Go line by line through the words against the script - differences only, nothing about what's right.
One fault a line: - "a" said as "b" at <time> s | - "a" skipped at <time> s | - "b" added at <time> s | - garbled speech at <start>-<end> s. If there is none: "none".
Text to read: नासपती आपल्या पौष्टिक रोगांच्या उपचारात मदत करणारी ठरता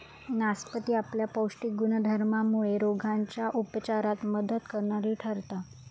- "गुणधर्मामुळे" added at 1.7 s